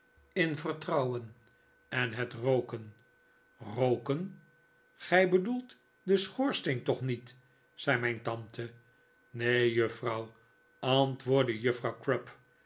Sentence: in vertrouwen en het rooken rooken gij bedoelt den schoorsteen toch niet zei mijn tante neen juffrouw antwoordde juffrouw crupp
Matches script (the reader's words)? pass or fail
pass